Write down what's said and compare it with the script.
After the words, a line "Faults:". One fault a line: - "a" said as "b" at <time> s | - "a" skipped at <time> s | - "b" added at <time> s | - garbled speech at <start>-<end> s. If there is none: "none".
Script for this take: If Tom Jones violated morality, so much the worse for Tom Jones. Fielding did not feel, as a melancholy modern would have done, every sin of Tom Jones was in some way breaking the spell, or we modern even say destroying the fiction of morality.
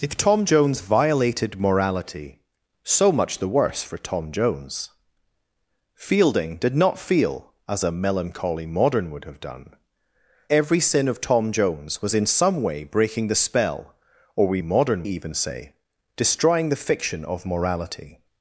If Tom Jones violated morality, so much the worse for Tom Jones. Fielding did not feel, as a melancholy modern would have done, every sin of Tom Jones was in some way breaking the spell, or we modern even say destroying the fiction of morality.
Faults:
none